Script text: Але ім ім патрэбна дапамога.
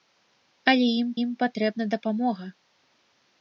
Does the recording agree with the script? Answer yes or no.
yes